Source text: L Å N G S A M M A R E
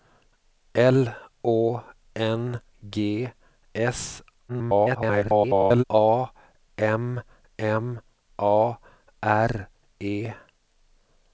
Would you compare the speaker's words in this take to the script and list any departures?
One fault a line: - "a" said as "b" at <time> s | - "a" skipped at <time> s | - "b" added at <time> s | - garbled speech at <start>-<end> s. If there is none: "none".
- garbled speech at 4.5-5.8 s